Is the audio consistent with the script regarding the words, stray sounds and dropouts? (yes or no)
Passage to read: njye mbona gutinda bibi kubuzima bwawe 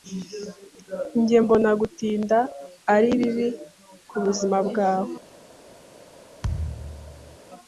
no